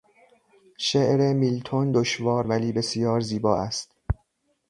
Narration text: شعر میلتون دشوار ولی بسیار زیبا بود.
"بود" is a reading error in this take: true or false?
true